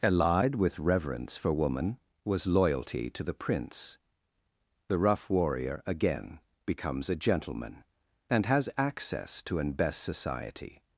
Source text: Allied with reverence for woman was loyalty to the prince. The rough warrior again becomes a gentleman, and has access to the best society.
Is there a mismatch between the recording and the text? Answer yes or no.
yes